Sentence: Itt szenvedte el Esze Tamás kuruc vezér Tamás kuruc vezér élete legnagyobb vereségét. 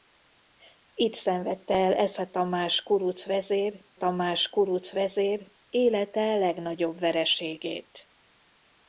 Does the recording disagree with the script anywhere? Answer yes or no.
no